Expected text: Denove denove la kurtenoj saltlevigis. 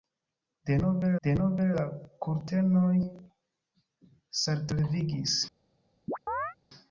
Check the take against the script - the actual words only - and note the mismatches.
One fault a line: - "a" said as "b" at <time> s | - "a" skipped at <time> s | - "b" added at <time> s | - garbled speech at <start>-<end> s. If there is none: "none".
none